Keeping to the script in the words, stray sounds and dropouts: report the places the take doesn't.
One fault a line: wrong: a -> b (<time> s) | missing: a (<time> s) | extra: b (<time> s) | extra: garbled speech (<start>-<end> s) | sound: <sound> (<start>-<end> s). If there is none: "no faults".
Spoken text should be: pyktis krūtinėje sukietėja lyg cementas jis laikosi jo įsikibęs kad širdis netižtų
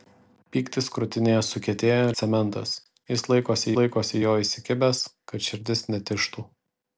missing: lyg (2.1 s)
extra: laikosi (3.8 s)